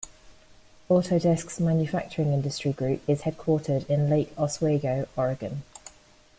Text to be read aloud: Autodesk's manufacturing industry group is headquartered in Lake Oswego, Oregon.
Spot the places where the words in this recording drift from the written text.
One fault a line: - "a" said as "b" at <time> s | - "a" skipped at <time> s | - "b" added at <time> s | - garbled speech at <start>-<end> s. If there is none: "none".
none